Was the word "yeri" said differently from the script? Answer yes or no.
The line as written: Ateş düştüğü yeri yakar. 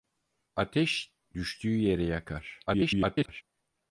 no